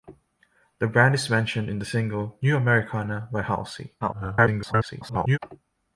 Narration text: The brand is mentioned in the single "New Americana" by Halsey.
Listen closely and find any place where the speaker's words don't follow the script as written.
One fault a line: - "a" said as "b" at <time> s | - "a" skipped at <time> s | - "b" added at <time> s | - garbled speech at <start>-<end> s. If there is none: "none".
- garbled speech at 4.0-5.4 s